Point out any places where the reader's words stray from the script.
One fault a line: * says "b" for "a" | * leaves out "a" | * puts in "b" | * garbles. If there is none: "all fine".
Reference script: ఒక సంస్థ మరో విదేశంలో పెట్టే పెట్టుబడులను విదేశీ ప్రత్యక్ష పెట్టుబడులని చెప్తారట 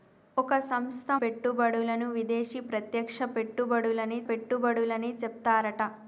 * leaves out "మరో విదేశంలో పెట్టే"
* puts in "పెట్టుబడులని"